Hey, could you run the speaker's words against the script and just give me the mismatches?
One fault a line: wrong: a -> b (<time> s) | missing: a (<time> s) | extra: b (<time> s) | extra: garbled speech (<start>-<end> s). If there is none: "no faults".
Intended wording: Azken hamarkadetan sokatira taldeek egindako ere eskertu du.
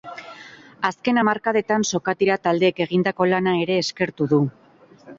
extra: lana (3.3 s)